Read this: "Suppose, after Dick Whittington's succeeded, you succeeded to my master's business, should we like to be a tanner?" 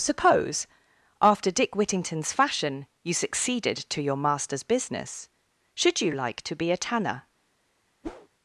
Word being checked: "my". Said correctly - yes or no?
no